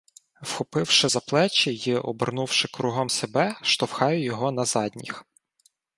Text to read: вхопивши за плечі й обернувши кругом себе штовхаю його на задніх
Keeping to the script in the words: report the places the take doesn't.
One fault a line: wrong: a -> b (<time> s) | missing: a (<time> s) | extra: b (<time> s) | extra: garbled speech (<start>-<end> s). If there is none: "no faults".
no faults